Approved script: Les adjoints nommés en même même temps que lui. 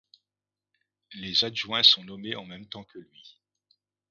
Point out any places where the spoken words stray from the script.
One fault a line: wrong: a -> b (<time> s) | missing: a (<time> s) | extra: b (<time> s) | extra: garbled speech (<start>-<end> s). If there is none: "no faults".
extra: sont (1.8 s)
missing: même (2.7 s)